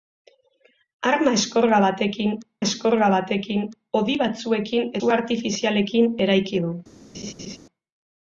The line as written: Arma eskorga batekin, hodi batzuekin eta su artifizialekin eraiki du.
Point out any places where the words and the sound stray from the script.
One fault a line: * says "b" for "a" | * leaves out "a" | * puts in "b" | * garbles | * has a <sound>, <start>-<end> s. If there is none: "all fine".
* puts in "eskorga batekin"
* leaves out "eta"
* has a laugh, 7.1-7.6 s